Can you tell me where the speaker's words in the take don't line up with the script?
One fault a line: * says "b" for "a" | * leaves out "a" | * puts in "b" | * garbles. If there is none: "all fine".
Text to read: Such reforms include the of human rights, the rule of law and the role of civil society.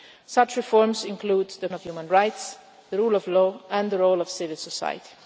all fine